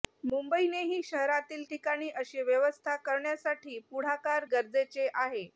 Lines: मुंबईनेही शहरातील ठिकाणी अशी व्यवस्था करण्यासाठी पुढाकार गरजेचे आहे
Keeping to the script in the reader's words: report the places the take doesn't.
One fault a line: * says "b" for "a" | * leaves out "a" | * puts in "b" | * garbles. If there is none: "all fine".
all fine